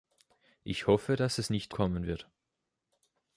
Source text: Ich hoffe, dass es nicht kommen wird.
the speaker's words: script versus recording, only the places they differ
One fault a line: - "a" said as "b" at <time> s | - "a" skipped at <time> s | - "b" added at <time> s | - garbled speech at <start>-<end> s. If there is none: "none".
none